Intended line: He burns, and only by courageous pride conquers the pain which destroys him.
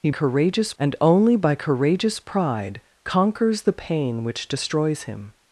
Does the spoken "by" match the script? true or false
true